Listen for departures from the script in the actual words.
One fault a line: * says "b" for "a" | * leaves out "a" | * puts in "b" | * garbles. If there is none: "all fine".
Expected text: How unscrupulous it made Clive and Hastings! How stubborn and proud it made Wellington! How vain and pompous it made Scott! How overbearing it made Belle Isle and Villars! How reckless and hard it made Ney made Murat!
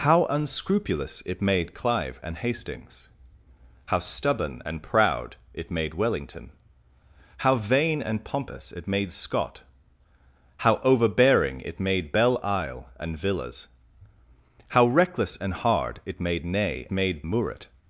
all fine